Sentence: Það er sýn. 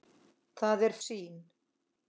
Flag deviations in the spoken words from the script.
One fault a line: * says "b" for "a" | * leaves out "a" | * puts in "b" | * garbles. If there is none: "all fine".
all fine